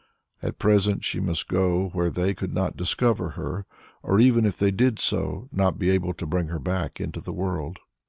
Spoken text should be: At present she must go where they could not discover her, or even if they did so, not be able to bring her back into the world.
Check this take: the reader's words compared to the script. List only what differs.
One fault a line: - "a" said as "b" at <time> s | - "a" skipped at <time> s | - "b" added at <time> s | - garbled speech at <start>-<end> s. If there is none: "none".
none